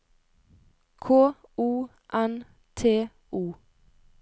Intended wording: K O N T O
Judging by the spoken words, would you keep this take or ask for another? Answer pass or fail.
pass